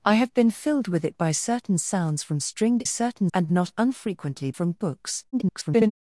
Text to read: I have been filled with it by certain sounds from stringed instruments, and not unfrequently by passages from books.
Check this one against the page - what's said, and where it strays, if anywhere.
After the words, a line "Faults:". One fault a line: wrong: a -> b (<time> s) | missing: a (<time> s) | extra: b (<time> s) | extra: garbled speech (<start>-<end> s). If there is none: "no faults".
I have been filled with it by certain sounds from stringed certain, and not unfrequently from books. [garbled]
Faults:
wrong: instruments -> certain (2.8 s)
missing: by passages (4.5 s)
extra: garbled speech (5.3-5.9 s)